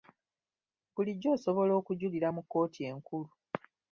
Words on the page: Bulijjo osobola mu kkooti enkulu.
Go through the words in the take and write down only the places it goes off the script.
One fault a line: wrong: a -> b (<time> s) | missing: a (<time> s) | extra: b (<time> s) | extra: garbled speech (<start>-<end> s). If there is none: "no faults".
extra: okujulira (1.8 s)